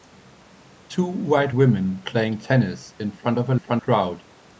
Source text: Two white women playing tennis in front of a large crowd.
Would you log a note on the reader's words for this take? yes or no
yes